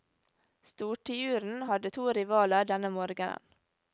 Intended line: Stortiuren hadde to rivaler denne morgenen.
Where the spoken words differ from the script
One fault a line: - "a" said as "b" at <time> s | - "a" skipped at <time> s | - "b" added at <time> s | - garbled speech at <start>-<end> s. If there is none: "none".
none